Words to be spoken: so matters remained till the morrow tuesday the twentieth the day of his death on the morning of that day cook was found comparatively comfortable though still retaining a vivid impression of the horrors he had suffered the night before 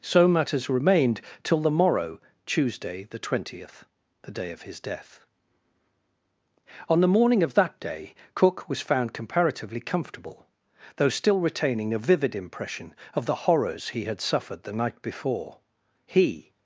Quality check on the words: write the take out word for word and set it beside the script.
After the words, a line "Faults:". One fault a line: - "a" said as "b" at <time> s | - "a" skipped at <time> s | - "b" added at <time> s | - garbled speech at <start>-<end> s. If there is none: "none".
so matters remained till the morrow tuesday the twentieth the day of his death on the morning of that day cook was found comparatively comfortable though still retaining a vivid impression of the horrors he had suffered the night before he
Faults:
- "he" added at 16.1 s